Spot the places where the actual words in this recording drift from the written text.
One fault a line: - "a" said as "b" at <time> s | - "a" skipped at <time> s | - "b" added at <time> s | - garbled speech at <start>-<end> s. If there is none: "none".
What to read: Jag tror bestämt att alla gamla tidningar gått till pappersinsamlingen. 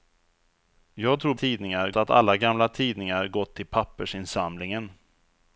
- "bestämt" said as "tidningar" at 1.3 s